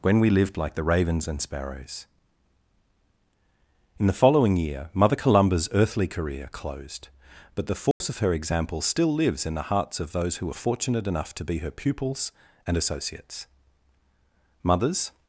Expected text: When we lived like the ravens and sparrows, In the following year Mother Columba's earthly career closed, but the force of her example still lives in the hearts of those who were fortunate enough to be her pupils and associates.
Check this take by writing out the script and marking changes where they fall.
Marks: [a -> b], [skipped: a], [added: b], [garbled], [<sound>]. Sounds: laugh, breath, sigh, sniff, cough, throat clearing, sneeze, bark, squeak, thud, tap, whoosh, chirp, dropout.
When we lived like the ravens and sparrows, In the following year Mother Columba's earthly career closed, but the force [dropout] of her example still lives in the hearts of those who were fortunate enough to be her pupils and associates. [added: Mothers]